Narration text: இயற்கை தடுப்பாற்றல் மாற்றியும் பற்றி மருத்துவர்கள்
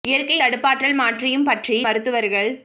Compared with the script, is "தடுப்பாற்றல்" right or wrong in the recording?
right